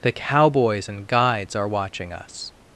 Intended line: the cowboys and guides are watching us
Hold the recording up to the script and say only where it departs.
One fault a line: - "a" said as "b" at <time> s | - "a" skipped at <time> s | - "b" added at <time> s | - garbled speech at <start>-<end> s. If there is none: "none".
none